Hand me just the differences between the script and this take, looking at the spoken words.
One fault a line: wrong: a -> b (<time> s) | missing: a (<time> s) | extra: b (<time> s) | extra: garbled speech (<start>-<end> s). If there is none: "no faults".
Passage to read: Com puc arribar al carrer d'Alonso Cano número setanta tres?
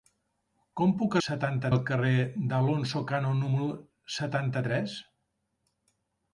wrong: arribar -> setanta (1.3 s)